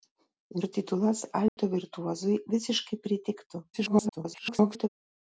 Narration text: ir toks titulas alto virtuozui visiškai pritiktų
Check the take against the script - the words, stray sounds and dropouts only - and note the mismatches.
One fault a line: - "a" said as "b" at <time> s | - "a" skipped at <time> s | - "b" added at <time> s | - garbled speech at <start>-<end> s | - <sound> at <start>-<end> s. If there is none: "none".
- "toks" skipped at 0.7 s
- dropout at 1.5-1.6 s
- garbled speech at 3.7-4.9 s